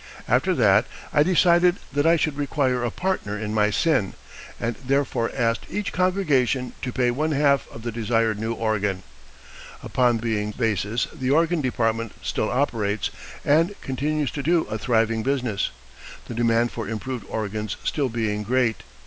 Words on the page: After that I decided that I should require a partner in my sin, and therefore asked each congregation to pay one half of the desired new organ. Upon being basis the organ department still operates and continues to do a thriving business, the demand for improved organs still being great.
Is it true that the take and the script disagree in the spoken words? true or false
false